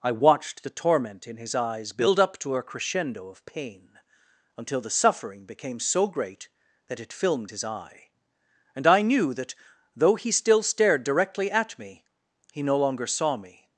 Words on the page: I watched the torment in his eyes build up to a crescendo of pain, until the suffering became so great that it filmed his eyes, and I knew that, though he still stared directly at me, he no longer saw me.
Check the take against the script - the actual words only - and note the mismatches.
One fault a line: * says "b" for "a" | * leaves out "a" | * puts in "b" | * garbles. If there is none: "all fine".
* says "eye" for "eyes"